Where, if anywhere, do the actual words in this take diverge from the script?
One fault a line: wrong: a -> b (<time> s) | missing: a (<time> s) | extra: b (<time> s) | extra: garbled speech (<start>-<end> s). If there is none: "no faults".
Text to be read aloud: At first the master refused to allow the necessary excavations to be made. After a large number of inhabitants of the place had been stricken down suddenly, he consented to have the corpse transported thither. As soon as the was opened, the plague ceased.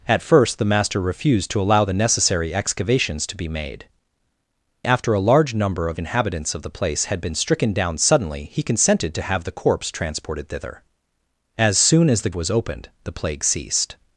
no faults